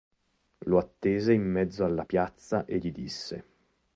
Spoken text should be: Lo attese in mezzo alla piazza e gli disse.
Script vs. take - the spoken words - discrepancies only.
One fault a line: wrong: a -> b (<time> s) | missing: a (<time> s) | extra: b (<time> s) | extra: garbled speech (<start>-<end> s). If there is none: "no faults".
no faults